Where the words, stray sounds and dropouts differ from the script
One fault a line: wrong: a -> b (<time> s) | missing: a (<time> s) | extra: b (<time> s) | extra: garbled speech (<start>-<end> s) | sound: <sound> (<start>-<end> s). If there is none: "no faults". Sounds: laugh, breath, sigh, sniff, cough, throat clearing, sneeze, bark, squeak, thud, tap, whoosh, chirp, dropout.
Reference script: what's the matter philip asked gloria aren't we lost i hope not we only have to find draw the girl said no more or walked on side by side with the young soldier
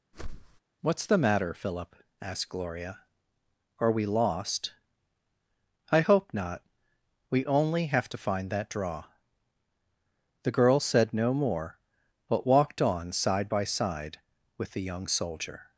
sound: whoosh (0.1-0.6 s)
wrong: aren't -> are (3.8 s)
extra: that (8.5 s)
wrong: or -> but (12.3 s)